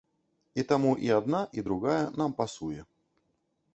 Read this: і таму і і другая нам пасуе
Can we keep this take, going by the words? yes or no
no